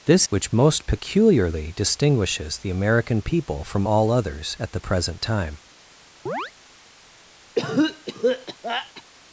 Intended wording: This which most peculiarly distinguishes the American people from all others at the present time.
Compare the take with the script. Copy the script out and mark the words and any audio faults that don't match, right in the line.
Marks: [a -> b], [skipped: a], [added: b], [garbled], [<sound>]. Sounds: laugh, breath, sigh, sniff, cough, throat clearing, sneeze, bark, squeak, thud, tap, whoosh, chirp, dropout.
This which most peculiarly distinguishes the American people from all others at the present time. [chirp] [cough]